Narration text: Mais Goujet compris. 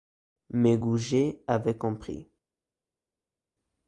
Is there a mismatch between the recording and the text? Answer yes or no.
yes